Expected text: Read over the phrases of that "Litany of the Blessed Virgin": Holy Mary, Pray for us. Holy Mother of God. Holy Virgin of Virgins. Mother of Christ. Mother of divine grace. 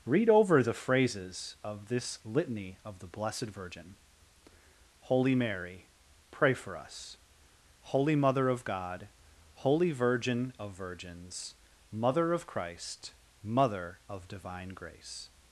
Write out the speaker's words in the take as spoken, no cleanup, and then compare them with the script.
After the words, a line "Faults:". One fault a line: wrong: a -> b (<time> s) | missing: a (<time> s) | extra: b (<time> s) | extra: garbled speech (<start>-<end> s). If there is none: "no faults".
Read over the phrases of this "Litany of the Blessed Virgin": Holy Mary, Pray for us. Holy Mother of God. Holy Virgin of Virgins. Mother of Christ. Mother of divine grace.
Faults:
wrong: that -> this (1.9 s)